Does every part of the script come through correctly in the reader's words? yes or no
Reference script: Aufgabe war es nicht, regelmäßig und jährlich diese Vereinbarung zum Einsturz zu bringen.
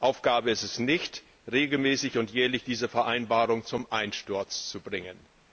no